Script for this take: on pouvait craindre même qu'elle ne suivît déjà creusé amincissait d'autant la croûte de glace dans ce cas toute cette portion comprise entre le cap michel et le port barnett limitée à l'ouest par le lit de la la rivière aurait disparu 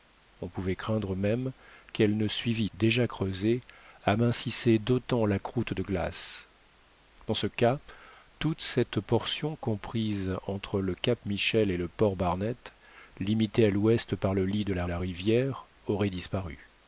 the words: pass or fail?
pass